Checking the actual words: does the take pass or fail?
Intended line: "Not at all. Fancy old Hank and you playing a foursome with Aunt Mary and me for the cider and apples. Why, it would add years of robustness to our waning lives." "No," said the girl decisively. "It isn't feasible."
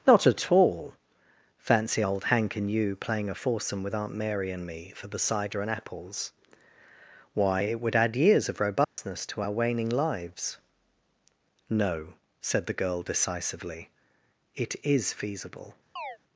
fail